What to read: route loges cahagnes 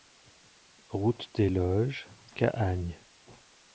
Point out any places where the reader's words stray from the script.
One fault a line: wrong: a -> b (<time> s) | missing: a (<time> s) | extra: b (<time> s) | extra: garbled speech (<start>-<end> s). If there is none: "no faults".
extra: des (1.4 s)